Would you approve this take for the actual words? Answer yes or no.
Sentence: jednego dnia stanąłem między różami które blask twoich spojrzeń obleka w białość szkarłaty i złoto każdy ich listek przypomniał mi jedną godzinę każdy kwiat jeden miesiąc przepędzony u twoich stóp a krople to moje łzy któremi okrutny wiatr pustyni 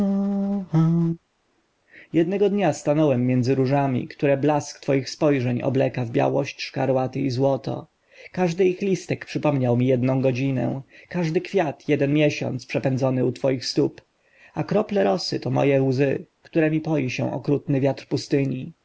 no